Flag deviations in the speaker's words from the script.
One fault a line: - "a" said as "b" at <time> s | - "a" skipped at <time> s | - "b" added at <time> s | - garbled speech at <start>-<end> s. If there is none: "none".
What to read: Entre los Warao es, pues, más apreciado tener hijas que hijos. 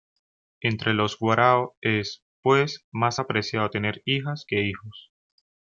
none